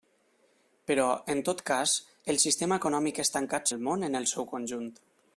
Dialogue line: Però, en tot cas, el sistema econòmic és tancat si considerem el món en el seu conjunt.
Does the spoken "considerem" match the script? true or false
false